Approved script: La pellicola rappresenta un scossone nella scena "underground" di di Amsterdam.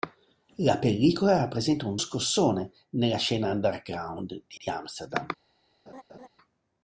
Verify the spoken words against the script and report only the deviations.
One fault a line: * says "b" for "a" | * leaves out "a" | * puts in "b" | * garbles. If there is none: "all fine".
all fine